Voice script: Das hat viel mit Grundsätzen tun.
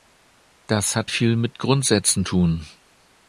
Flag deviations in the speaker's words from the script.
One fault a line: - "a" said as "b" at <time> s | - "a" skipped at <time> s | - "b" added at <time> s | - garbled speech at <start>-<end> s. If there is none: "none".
none